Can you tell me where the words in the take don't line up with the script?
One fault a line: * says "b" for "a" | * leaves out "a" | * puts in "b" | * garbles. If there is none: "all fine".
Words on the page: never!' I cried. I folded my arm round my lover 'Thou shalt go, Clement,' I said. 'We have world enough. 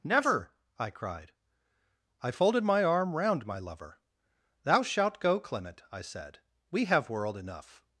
all fine